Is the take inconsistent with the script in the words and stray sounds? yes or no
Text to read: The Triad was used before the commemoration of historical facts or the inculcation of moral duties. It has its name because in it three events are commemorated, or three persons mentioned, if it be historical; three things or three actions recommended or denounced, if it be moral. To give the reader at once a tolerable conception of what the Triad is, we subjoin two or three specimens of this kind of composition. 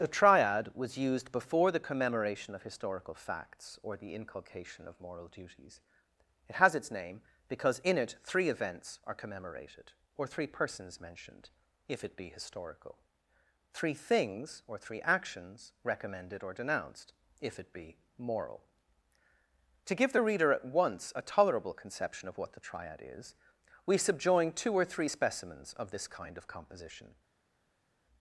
no